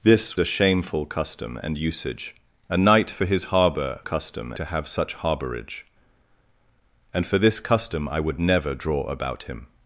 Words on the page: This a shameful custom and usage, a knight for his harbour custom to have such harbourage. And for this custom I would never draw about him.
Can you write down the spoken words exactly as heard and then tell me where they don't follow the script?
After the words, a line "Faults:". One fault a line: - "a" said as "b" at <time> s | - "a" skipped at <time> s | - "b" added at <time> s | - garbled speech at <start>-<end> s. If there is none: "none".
This a shameful custom and usage, a knight for his harbour custom to have such harbourage. And for this custom I would never draw about him.
Faults:
none